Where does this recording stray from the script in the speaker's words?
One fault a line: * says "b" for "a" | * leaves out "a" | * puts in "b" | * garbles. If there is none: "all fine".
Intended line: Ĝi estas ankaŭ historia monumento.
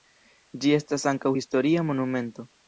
all fine